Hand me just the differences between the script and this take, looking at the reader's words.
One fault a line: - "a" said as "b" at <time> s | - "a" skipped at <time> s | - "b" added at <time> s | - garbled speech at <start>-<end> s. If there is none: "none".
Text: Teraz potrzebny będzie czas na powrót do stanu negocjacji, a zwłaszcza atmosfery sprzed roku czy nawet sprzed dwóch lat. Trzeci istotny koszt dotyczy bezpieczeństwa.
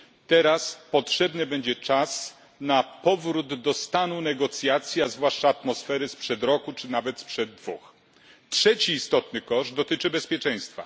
none